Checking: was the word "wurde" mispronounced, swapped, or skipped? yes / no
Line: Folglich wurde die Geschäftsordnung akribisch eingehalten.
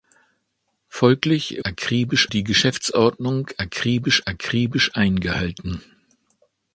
yes